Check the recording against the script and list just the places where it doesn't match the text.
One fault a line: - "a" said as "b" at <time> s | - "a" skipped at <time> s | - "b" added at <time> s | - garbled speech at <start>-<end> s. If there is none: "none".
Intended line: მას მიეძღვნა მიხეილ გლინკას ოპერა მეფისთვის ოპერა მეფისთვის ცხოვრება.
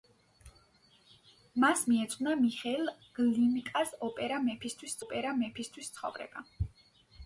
none